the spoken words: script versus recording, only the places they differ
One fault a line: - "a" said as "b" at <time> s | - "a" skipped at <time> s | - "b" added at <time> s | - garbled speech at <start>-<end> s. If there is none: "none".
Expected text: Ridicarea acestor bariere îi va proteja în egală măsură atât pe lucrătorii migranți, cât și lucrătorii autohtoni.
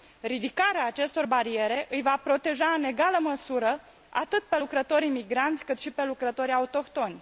- "pe" added at 5.9 s